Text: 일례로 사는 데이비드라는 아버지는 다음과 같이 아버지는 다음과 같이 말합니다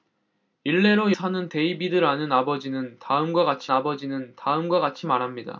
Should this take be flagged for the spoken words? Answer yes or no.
no